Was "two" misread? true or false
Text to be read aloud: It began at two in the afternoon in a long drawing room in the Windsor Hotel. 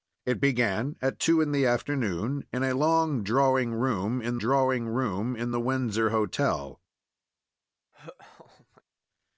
false